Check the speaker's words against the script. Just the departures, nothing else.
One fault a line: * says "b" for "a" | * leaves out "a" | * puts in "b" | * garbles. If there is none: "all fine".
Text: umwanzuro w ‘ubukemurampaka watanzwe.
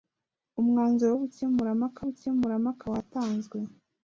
* puts in "ubukemurampaka"